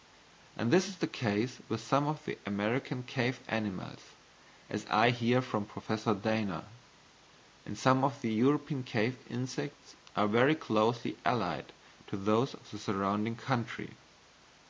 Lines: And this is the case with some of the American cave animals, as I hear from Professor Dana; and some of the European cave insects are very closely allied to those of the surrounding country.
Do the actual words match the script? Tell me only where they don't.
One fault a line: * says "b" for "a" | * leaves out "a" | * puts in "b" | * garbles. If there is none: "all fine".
all fine